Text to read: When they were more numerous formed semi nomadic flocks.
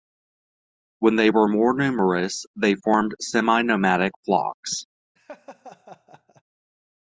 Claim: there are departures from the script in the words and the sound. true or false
true